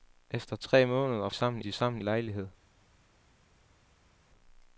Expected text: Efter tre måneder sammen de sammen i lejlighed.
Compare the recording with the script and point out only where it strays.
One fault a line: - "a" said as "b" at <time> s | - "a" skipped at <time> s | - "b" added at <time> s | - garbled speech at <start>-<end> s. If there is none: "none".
none